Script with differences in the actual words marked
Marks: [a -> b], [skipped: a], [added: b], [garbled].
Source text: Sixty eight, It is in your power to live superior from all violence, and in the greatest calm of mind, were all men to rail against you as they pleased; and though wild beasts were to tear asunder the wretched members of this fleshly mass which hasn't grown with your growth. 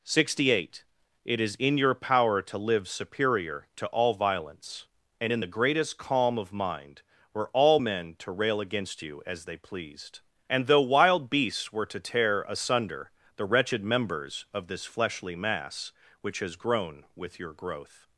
Sixty eight, It is in your power to live superior [from -> to] all violence, and in the greatest calm of mind, were all men to rail against you as they pleased; and though wild beasts were to tear asunder the wretched members of this fleshly mass which [hasn't -> has] grown with your growth.